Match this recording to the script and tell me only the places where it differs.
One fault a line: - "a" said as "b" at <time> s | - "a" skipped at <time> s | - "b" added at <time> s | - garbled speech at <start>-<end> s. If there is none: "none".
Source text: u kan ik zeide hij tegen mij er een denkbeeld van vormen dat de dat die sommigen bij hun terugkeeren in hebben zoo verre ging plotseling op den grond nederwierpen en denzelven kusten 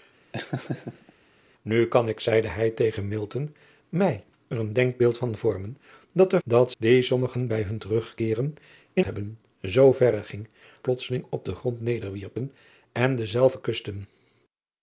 none